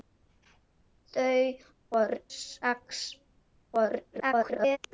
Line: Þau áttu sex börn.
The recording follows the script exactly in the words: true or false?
false